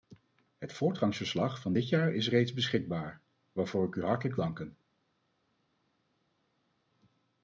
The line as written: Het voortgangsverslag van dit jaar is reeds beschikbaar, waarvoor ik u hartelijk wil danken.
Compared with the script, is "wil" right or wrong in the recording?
wrong